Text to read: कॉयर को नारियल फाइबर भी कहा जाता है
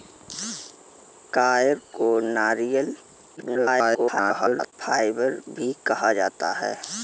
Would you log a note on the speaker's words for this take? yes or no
yes